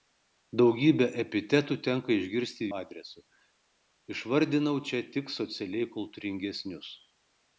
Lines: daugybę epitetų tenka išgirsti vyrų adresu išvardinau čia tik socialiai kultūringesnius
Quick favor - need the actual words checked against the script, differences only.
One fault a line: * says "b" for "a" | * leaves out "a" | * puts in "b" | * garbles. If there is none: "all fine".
* leaves out "vyrų"